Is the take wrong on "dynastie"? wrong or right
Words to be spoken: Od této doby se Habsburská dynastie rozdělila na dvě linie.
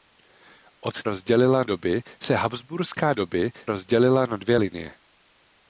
wrong